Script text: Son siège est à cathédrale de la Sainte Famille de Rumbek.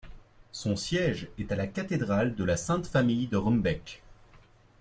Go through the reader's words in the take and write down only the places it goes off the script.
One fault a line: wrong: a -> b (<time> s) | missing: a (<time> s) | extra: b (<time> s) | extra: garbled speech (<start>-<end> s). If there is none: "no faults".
extra: la (1.6 s)